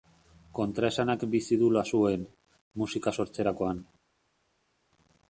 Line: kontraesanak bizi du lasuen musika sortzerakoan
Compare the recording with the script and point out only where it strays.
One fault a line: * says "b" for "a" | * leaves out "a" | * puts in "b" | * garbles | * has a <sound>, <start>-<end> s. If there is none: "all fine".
all fine